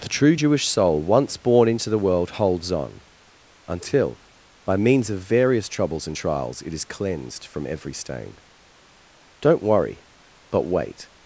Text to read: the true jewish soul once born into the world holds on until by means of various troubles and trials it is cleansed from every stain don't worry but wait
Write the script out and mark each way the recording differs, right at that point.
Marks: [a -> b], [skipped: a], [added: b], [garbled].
the true jewish soul once born into the world holds on until by means of various troubles and trials it is cleansed from every stain don't worry but wait